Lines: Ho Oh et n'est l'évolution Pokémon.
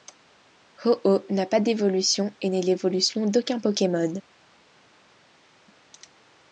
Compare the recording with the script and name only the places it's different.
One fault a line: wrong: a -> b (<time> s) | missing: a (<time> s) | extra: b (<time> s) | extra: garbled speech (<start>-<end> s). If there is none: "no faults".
extra: n'a pas d'évolution (1.3 s)
extra: d'aucun (3.2 s)